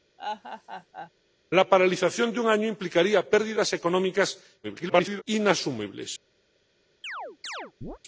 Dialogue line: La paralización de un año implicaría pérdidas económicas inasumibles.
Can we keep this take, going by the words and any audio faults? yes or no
no